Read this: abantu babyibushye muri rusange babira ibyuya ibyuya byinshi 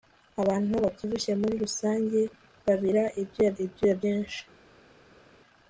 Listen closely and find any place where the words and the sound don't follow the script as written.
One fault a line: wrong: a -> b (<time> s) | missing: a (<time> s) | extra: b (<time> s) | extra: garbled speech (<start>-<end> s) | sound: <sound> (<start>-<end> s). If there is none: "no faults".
no faults